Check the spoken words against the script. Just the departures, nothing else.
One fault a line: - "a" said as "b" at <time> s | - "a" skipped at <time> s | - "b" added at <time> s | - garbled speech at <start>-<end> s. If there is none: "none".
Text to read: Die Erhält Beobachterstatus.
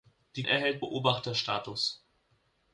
none